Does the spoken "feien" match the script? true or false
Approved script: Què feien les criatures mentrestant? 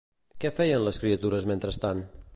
true